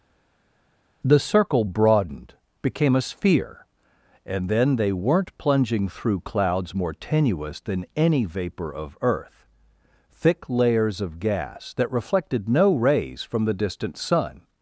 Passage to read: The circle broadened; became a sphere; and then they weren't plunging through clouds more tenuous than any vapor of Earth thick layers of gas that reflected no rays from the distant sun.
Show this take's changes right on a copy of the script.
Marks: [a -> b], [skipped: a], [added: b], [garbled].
The circle broadened; became a sphere; and then they weren't plunging through clouds more tenuous than any vapor of Earth thick layers of gas that reflected no rays from the distant sun.